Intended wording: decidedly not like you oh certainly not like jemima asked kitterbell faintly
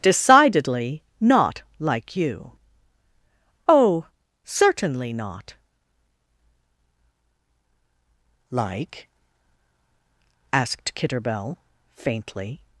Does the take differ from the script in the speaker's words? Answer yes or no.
yes